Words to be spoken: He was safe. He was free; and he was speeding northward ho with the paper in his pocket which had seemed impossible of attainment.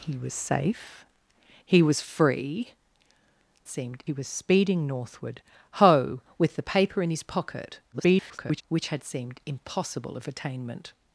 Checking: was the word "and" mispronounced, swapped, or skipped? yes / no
yes